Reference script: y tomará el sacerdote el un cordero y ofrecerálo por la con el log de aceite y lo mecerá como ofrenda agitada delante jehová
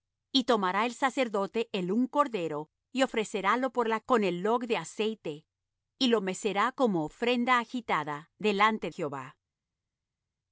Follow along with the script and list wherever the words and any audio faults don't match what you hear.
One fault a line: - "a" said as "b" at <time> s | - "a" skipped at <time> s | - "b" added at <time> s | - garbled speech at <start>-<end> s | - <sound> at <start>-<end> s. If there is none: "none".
none